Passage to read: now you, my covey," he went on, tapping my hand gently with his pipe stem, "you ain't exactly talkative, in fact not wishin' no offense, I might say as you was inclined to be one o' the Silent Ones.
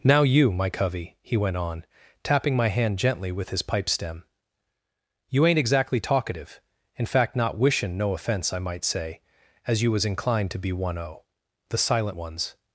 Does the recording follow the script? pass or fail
pass